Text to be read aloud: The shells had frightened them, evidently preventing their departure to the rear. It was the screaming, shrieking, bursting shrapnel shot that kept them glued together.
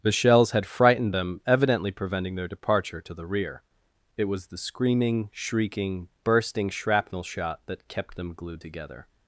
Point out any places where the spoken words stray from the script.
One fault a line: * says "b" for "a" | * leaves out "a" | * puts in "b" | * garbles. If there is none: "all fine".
all fine